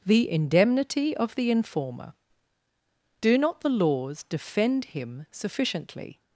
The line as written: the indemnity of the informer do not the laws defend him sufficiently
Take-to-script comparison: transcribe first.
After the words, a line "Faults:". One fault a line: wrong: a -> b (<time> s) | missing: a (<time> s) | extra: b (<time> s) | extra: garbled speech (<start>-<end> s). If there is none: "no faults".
the indemnity of the informer do not the laws defend him sufficiently
Faults:
no faults